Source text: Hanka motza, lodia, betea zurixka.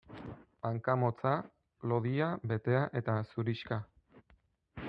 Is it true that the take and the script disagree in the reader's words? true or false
true